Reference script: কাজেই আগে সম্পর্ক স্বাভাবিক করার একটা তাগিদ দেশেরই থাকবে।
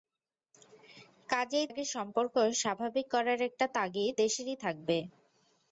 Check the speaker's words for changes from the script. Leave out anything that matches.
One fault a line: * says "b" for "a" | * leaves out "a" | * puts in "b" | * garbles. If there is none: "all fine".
all fine